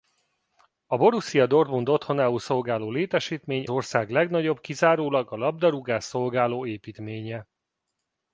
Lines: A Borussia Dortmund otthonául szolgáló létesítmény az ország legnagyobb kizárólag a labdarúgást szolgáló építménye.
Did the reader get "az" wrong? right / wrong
wrong